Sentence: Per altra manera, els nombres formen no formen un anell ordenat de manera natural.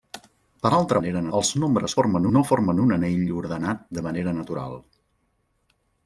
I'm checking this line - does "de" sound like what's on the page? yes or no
yes